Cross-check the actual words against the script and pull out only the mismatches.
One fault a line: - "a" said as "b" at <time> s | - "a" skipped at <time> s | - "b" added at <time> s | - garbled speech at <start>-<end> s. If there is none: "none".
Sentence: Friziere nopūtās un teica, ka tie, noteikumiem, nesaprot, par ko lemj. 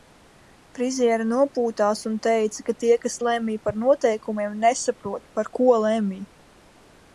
- "kas lemj par" added at 3.1 s